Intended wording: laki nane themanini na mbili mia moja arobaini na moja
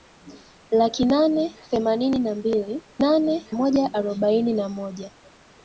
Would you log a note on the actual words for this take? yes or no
yes